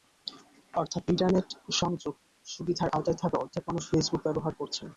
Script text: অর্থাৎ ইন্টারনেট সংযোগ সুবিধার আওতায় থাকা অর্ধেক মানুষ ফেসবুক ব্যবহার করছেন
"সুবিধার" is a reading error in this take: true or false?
false